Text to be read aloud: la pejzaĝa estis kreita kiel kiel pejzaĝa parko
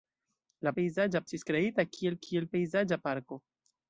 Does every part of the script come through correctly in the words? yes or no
yes